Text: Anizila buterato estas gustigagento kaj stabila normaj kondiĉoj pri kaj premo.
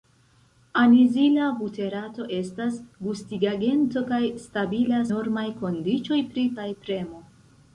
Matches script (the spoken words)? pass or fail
pass